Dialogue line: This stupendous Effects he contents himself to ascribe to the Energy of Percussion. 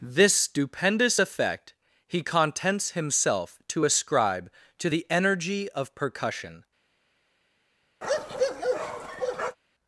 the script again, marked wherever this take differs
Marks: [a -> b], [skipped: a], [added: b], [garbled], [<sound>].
This stupendous [Effects -> Effect] he contents himself to ascribe to the Energy of Percussion. [bark]